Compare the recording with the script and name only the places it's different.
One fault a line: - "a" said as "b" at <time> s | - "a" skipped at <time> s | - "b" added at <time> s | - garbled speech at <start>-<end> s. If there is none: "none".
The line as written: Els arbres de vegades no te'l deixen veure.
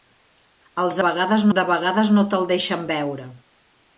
- "arbres" said as "vegades" at 1.0 s